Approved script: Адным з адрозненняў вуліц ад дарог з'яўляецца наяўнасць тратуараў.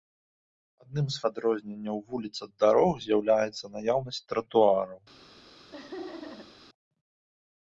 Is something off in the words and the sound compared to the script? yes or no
yes